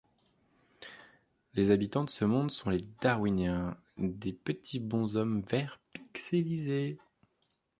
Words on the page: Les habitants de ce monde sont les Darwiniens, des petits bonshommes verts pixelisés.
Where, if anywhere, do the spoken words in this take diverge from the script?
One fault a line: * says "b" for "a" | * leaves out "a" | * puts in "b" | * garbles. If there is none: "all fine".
all fine